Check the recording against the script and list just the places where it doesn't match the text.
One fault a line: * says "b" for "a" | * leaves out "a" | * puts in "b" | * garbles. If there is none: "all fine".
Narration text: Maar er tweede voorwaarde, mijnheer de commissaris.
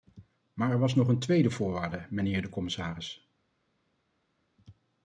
* puts in "was nog een"